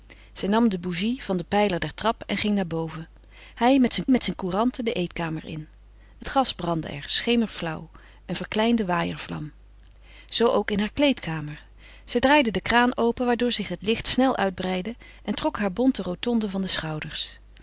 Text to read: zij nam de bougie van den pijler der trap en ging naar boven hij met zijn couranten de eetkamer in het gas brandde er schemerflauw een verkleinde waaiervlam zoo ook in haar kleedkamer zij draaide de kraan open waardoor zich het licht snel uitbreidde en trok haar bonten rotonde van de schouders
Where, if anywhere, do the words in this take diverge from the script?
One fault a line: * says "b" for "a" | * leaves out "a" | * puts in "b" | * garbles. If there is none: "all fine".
* puts in "met zijn"